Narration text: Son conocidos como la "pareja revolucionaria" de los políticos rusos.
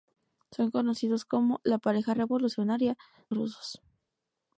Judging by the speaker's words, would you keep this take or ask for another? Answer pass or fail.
fail